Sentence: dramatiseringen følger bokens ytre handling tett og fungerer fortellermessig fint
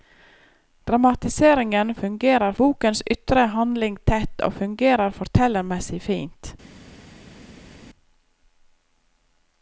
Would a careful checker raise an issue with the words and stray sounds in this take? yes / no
yes